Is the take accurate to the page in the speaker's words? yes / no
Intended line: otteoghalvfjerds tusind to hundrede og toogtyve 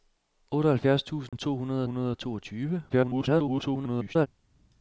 no